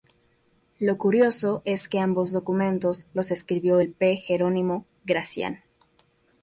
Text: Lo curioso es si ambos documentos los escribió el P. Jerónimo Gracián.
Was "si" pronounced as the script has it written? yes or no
no